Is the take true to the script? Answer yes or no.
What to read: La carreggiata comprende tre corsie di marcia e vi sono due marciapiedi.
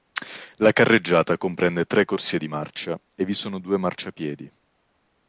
yes